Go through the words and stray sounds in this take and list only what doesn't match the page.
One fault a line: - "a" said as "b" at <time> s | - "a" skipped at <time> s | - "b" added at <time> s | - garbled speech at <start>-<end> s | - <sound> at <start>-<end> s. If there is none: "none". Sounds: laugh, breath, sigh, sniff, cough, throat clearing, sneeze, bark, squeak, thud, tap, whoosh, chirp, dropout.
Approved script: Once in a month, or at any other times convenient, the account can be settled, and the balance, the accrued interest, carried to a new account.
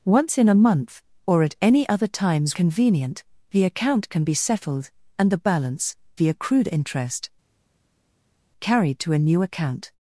none